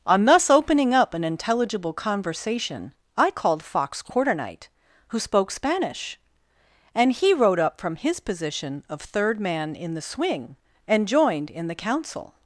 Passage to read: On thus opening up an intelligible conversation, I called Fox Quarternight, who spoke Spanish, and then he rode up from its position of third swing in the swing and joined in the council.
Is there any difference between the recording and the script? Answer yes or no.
yes